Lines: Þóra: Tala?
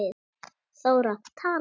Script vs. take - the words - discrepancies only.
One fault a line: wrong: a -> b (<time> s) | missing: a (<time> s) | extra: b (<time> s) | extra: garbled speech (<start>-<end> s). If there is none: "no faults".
no faults